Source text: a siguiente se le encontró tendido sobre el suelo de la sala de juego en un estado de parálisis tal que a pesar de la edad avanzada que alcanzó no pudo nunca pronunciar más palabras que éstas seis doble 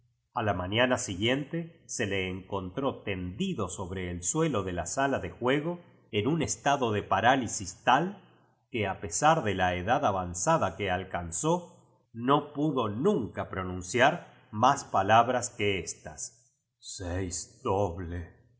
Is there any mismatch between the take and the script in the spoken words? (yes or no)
yes